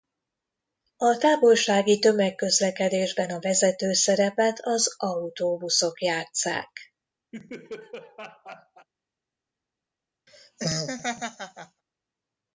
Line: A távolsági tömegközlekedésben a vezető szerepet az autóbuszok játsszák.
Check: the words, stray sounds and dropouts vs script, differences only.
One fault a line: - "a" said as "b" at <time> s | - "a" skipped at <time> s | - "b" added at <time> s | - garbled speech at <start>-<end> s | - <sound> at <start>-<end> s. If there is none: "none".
- laugh at 7.3-8.9 s
- laugh at 10.3-11.8 s